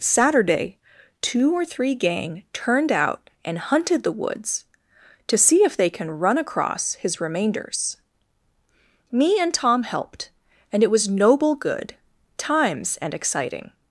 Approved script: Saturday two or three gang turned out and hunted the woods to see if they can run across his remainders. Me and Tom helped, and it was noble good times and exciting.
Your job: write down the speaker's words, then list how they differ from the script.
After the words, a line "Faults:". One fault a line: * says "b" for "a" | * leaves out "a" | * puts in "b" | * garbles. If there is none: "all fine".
Saturday two or three gang turned out and hunted the woods to see if they can run across his remainders. Me and Tom helped, and it was noble good times and exciting.
Faults:
all fine